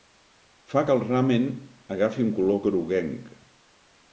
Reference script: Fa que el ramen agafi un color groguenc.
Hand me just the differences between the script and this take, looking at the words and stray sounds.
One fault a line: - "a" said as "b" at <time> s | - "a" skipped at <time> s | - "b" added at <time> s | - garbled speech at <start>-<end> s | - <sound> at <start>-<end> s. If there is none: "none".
none